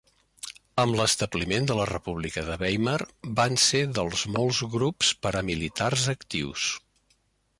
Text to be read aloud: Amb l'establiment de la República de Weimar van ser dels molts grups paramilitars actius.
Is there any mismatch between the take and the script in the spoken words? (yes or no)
no